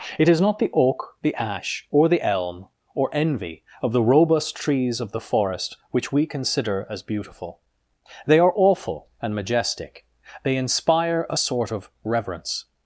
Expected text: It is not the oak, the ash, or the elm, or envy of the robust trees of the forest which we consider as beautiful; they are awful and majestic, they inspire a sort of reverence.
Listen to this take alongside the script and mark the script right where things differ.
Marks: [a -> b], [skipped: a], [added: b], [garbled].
It is not the oak, the ash, or the elm, or envy of the robust trees of the forest which we consider as beautiful; they are awful and majestic, they inspire a sort of reverence.